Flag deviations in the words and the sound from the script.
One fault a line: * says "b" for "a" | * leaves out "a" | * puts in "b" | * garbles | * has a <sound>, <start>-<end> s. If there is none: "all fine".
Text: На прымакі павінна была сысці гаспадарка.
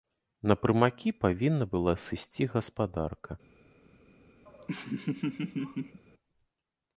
* has a laugh, 4.5-6.0 s